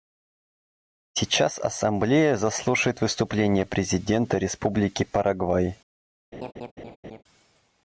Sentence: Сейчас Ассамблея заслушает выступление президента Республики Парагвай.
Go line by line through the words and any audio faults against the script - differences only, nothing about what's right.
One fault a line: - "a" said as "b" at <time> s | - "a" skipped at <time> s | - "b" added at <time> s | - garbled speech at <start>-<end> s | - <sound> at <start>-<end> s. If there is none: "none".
- laugh at 6.3-7.2 s